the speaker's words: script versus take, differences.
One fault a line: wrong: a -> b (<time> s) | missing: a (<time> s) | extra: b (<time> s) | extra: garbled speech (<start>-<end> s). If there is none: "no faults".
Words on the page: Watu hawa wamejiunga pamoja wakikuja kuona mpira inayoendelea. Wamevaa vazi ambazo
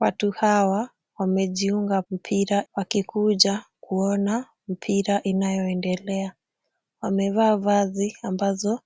wrong: pamoja -> mpira (2.1 s)